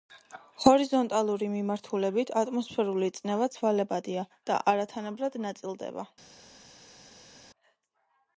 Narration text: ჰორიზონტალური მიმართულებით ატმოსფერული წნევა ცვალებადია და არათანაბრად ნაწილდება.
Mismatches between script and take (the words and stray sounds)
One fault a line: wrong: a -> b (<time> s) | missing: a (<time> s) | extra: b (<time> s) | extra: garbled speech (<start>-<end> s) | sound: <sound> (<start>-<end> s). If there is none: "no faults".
no faults